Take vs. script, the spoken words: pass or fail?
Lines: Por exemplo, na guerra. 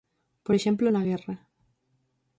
pass